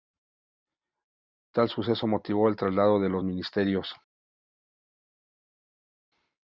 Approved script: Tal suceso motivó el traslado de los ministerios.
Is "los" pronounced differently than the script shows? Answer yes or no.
no